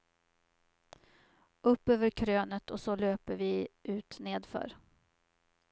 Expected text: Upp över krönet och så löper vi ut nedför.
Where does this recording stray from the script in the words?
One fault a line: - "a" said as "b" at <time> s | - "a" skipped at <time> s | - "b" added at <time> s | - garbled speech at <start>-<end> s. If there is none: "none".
none